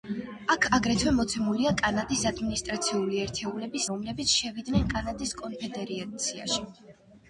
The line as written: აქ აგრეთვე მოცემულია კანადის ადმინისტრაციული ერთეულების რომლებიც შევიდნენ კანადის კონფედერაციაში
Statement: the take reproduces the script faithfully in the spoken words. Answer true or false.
true